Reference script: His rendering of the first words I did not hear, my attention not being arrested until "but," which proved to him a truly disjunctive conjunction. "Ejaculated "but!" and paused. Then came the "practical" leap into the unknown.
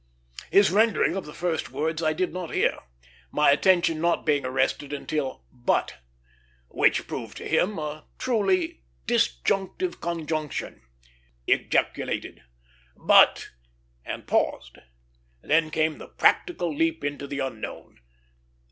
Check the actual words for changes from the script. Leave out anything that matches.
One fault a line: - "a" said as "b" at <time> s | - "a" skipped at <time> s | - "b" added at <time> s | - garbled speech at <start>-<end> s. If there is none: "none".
none